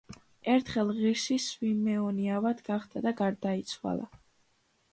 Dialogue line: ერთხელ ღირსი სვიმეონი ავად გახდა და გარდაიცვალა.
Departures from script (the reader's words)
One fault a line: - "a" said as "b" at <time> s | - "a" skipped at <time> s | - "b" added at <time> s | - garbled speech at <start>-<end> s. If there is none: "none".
none